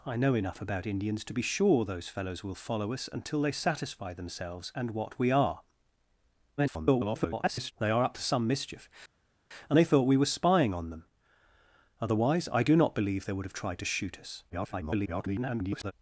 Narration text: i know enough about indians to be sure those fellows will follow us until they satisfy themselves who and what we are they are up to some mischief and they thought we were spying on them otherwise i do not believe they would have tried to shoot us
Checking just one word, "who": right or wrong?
wrong